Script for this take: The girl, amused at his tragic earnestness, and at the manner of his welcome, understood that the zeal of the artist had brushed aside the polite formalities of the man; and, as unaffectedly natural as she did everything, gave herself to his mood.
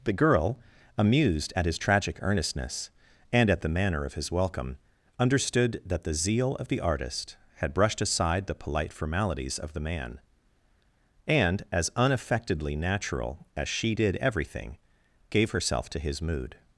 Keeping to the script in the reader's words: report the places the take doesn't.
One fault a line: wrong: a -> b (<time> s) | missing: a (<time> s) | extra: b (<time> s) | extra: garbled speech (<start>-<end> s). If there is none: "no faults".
no faults